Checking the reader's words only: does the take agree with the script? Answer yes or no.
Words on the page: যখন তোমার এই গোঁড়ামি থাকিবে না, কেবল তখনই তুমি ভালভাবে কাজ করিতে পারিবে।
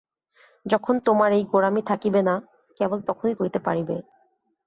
no